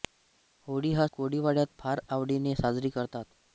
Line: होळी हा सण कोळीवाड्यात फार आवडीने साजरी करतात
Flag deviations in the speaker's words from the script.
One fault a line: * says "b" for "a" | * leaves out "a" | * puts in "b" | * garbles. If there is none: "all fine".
* leaves out "सण"